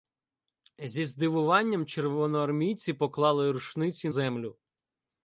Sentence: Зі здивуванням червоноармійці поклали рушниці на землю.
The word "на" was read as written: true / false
false